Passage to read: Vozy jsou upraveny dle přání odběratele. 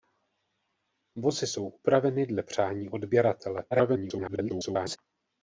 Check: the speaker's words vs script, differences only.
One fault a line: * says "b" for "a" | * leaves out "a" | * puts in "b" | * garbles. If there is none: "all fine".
* garbles